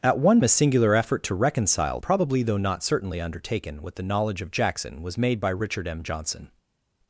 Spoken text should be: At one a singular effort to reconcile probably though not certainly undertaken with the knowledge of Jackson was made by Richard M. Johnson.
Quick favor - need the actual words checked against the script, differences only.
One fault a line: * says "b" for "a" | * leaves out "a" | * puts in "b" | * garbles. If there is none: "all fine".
all fine